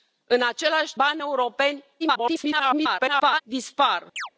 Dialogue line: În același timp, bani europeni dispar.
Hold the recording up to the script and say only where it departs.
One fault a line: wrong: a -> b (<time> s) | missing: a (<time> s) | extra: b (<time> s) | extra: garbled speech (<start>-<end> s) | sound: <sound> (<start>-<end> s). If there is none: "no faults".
missing: timp (0.9 s)
extra: garbled speech (2.0-3.4 s)
sound: chirp (4.2-4.3 s)